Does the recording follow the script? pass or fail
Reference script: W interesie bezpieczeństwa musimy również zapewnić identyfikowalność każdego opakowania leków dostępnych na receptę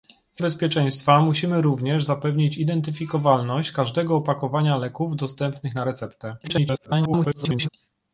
fail